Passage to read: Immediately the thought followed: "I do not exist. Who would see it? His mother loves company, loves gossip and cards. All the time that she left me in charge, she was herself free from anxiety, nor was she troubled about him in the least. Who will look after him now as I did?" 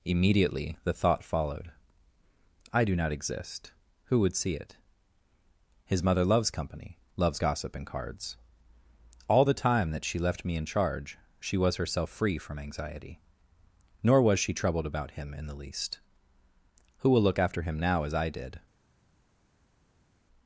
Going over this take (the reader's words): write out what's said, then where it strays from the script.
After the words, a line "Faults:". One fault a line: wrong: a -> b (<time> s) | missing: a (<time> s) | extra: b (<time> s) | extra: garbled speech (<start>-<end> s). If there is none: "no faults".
Immediately the thought followed: "I do not exist. Who would see it? His mother loves company, loves gossip and cards. All the time that she left me in charge, she was herself free from anxiety, nor was she troubled about him in the least. Who will look after him now as I did?"
Faults:
no faults